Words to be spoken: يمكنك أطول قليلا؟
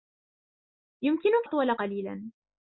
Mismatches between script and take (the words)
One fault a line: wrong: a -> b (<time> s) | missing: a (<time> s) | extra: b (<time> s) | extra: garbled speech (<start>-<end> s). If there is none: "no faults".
no faults